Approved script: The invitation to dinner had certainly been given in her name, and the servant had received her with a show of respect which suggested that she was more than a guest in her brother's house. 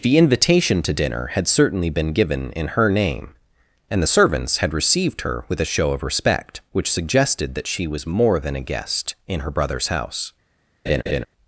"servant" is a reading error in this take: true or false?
true